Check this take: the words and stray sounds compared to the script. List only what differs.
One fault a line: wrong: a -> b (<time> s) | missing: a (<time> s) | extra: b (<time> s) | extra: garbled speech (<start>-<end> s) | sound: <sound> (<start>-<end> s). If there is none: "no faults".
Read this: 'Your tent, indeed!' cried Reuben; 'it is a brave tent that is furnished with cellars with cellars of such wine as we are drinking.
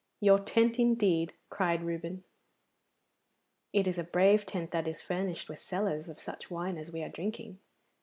missing: with cellars (6.1 s)